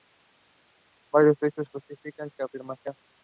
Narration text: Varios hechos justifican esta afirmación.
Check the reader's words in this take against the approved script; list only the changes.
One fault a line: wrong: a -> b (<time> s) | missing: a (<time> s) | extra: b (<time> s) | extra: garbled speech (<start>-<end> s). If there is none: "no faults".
no faults